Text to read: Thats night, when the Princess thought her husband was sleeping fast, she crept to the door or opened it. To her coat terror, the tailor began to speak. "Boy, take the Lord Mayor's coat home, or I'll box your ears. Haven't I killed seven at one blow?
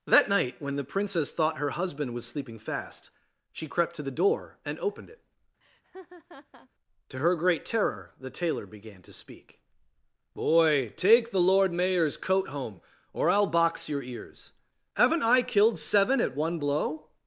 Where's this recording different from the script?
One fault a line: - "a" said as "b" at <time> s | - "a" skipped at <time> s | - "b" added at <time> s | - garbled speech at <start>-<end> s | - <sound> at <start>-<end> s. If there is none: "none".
- "Thats" said as "That" at 0.1 s
- "or" said as "and" at 4.7 s
- laugh at 5.6-6.7 s
- "coat" said as "great" at 7.4 s